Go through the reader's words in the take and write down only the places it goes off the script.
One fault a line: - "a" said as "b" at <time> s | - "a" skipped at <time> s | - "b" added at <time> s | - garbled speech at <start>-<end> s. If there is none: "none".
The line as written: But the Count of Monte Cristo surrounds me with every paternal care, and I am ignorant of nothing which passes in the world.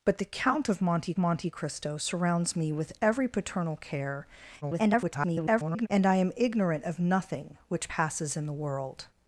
- "Monte" added at 1.2 s
- garbled speech at 4.6-5.9 s